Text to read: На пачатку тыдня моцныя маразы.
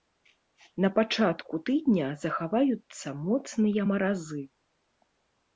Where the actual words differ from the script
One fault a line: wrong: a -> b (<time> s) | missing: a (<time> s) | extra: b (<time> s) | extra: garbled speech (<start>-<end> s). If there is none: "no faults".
extra: захаваюцца (2.2 s)